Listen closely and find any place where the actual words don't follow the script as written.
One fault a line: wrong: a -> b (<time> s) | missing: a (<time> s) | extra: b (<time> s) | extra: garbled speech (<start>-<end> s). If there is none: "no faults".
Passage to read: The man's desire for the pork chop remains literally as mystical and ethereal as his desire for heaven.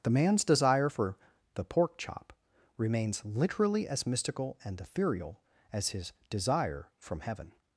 wrong: for -> from (7.0 s)